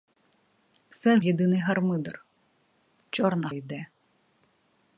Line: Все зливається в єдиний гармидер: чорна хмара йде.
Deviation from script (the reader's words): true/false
true